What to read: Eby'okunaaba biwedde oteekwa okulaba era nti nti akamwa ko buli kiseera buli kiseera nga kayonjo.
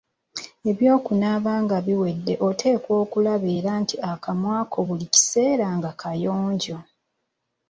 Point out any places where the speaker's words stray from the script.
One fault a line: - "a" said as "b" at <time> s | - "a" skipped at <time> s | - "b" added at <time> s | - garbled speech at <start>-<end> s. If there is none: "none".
- "nga" added at 1.6 s
- "nti" skipped at 3.9 s
- "buli kiseera" skipped at 5.7 s